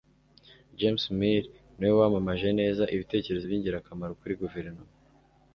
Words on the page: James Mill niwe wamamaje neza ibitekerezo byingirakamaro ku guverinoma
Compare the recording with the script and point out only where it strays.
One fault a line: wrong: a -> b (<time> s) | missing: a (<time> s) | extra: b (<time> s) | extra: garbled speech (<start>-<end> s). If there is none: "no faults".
wrong: ku -> kuri (4.2 s)